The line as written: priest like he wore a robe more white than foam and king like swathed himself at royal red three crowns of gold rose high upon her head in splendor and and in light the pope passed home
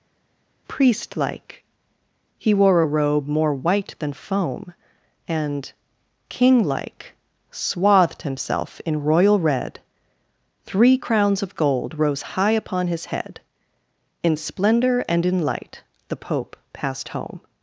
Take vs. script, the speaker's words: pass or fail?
fail